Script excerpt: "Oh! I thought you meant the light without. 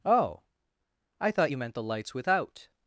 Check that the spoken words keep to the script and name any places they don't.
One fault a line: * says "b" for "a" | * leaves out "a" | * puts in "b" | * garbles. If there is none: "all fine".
* says "lights" for "light"